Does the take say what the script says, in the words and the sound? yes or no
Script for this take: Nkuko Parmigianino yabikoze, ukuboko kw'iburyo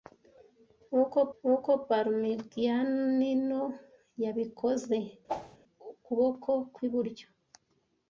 no